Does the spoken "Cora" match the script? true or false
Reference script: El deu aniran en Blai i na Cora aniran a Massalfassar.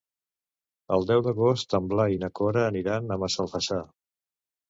true